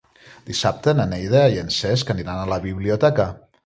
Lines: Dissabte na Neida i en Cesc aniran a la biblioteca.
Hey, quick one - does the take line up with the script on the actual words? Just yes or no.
yes